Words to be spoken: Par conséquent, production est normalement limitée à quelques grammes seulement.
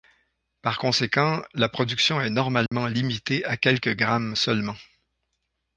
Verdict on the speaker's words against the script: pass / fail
fail